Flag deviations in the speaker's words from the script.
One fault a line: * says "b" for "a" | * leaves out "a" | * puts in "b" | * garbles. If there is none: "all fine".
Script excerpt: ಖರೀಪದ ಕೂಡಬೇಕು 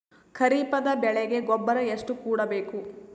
* puts in "ಬೆಳೆಗೆ ಗೊಬ್ಬರ ಎಷ್ಟು"